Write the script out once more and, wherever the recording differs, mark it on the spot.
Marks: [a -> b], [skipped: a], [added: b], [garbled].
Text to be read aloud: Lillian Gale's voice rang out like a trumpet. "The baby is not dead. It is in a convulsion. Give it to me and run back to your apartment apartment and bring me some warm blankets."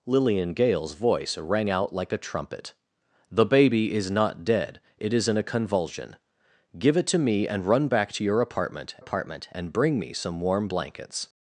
Lillian Gale's voice rang out like a trumpet. "The baby is not dead. It is in a convulsion. Give it to me and run back to your apartment apartment and bring me some warm blankets."